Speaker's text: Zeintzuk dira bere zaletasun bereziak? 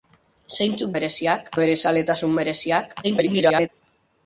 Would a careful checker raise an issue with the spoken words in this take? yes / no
yes